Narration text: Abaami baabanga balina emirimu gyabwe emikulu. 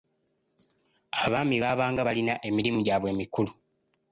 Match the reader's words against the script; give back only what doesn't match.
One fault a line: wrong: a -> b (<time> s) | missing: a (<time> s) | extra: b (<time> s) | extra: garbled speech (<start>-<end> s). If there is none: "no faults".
no faults